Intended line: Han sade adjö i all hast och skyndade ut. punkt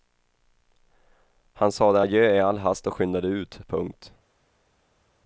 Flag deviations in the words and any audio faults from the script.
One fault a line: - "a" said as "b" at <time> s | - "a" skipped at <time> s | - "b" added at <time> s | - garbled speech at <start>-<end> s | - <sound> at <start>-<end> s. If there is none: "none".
none